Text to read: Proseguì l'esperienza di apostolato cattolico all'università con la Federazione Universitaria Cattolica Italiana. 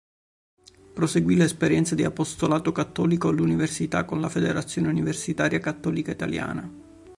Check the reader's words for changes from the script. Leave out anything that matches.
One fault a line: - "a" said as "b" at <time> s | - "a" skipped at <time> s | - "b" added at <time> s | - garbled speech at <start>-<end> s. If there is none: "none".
none